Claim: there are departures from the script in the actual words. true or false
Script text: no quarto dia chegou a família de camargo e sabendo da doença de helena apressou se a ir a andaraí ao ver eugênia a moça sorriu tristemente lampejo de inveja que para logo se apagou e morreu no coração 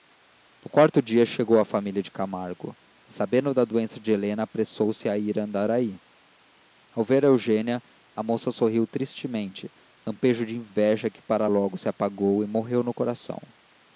false